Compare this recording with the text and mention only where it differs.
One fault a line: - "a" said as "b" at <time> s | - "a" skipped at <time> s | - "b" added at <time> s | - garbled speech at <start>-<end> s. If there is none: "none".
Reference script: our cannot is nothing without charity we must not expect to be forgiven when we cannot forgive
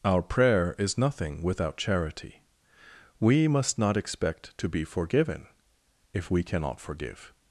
- "cannot" said as "prayer" at 0.2 s
- "when" said as "if" at 6.1 s